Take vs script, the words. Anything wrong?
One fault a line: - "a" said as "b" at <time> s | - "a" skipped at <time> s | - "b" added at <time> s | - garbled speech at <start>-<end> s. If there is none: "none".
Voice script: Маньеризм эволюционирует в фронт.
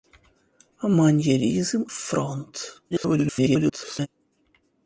- "эволюционирует" skipped at 1.8 s
- garbled speech at 2.9-4.1 s